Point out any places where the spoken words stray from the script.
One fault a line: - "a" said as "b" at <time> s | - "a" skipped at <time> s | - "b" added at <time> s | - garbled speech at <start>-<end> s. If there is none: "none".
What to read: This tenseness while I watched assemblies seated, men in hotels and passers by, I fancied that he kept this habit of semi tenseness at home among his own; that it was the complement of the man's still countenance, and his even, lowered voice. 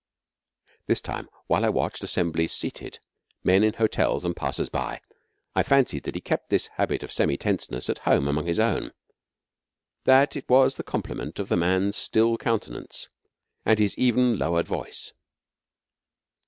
- "tenseness" said as "time" at 1.0 s